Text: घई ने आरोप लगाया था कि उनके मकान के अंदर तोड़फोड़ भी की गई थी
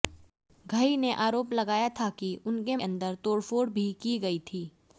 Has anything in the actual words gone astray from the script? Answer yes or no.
yes